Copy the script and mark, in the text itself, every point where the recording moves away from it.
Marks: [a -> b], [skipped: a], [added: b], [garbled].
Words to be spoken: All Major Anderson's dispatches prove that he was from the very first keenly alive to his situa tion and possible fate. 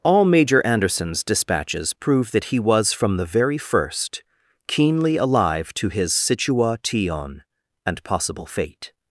All Major Anderson's dispatches prove that he was from the very first keenly alive to his situa tion and possible fate.